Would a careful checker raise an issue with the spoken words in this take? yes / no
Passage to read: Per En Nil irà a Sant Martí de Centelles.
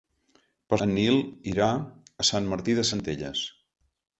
no